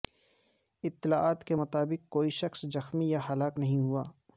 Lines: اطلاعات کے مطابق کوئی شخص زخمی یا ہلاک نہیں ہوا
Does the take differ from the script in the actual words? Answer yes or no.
no